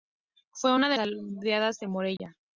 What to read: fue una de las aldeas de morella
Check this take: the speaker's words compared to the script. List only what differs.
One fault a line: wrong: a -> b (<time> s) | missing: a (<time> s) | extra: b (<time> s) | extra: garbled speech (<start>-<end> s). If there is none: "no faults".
missing: las (1.0 s)